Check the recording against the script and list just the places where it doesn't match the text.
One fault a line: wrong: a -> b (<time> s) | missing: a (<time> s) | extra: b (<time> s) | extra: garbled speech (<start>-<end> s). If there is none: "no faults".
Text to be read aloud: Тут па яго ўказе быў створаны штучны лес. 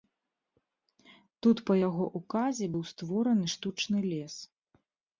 no faults